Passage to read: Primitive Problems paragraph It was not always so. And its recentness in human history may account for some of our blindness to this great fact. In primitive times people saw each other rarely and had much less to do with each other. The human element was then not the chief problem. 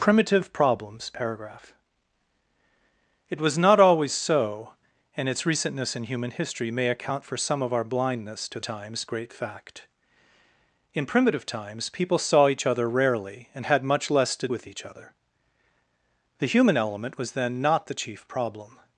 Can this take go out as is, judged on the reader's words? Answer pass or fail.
fail